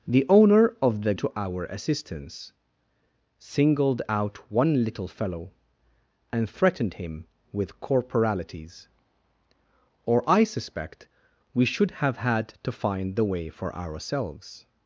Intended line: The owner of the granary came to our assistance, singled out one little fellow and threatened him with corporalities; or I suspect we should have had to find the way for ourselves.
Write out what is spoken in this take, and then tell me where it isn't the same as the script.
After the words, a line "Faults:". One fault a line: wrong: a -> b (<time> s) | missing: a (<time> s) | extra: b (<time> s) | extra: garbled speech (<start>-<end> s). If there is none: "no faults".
The owner of the to our assistance, singled out one little fellow and threatened him with corporalities; or I suspect we should have had to find the way for ourselves.
Faults:
missing: granary came (1.1 s)